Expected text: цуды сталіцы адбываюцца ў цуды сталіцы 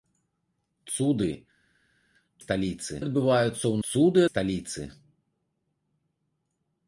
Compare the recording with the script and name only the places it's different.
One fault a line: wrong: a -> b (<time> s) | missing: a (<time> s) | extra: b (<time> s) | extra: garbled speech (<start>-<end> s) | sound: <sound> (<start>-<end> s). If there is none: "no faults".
no faults